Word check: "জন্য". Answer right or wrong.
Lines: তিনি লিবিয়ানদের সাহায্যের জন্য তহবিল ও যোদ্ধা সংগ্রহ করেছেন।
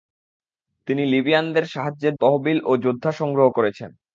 wrong